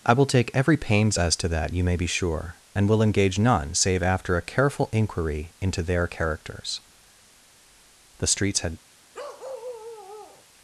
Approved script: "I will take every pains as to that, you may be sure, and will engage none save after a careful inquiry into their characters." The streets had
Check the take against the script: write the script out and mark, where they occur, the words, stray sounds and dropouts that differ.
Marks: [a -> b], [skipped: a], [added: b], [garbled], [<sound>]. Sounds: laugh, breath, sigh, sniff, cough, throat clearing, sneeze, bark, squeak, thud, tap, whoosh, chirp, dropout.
"I will take every pains as to that, you may be sure, and will engage none save after a careful inquiry into their characters." The streets had [bark]